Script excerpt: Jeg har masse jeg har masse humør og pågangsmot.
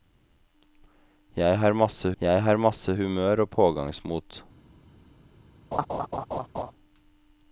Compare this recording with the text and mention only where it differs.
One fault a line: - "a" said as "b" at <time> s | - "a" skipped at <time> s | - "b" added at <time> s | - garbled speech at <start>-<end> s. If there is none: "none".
none